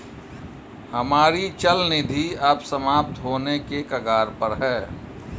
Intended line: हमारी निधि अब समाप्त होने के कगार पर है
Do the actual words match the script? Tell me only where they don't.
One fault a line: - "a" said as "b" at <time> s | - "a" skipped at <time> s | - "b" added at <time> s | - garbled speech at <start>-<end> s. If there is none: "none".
- "चल" added at 1.6 s